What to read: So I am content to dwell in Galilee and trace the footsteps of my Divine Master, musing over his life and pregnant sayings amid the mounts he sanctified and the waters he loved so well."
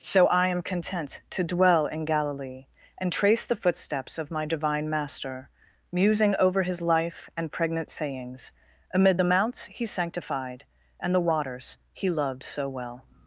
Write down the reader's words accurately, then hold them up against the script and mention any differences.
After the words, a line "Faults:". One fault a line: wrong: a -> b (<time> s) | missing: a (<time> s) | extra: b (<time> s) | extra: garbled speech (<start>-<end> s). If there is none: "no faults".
So I am content to dwell in Galilee and trace the footsteps of my Divine Master, musing over his life and pregnant sayings amid the mounts he sanctified and the waters he loved so well."
Faults:
no faults